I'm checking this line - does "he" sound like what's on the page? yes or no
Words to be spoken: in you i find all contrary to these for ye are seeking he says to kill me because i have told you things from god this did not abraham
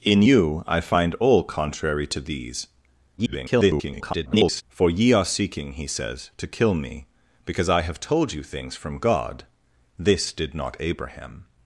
yes